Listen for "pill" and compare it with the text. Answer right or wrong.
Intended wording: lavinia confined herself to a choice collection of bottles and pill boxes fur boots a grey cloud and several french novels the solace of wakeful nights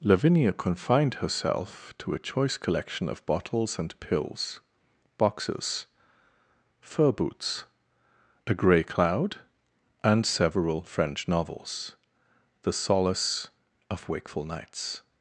wrong